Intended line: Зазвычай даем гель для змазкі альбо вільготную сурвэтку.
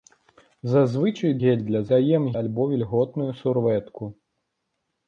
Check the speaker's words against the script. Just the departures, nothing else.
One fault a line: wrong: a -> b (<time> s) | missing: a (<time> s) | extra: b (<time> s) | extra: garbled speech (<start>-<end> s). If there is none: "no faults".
missing: даем (1.3 s)
wrong: змазкі -> даем (1.9 s)